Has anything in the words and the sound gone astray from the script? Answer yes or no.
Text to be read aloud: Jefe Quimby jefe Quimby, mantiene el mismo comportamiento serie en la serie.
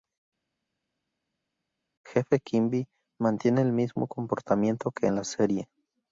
yes